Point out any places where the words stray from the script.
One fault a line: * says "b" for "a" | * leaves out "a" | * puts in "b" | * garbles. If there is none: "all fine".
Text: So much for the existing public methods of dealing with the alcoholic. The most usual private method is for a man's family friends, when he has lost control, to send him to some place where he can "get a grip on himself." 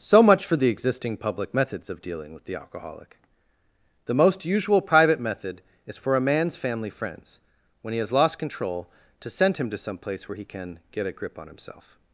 all fine